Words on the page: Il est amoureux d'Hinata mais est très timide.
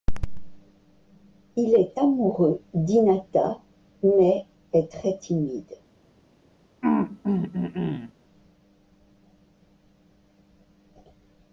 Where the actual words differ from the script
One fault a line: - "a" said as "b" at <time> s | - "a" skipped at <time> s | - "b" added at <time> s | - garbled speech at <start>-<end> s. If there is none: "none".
none